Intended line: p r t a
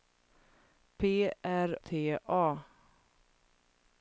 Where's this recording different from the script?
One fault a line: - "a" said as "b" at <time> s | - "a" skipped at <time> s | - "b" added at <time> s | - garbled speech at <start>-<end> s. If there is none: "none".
none